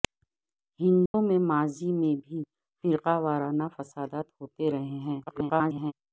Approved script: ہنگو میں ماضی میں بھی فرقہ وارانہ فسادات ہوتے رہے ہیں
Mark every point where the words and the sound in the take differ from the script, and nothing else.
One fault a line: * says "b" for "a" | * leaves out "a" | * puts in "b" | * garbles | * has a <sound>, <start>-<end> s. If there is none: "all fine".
* has a dropout, 1.1-1.1 s
* garbles